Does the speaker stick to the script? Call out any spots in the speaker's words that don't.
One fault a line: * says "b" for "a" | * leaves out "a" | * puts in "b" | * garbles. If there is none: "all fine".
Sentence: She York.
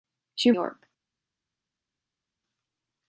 all fine